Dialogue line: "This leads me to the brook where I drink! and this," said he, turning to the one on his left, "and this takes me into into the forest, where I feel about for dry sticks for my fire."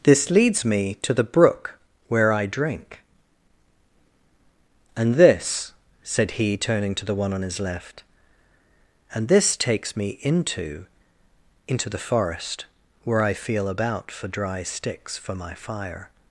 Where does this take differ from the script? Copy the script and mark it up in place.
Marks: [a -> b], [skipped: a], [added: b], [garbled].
"This leads me to the brook where I drink! and this," said he, turning to the one on his left, "and this takes me into into the forest, where I feel about for dry sticks for my fire."